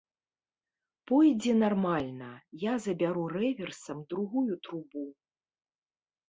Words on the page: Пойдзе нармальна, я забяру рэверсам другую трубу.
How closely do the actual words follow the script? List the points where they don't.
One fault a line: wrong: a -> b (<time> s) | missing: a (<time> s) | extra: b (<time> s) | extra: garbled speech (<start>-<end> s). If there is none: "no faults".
no faults